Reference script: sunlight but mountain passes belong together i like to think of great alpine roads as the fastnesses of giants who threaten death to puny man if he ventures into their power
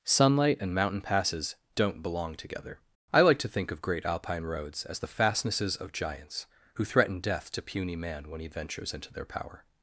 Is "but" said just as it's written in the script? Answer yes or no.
no